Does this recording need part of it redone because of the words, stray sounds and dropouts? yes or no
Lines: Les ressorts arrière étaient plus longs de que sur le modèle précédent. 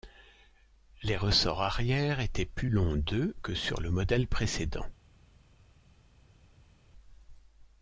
no